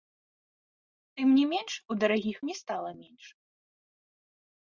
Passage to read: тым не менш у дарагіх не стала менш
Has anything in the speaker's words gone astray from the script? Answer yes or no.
no